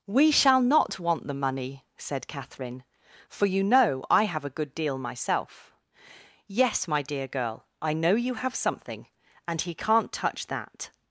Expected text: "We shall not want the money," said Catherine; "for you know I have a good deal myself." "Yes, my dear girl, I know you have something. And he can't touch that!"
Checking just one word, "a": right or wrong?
right